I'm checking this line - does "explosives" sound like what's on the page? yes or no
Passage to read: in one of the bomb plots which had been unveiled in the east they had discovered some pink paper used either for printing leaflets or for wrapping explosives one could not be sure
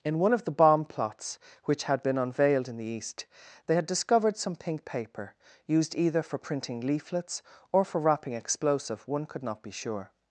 no